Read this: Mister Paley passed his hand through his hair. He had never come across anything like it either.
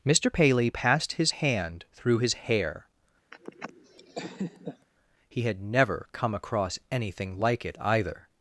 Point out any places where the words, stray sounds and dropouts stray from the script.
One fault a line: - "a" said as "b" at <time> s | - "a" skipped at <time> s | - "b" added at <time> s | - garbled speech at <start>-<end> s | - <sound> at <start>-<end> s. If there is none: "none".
- laugh at 3.3-4.9 s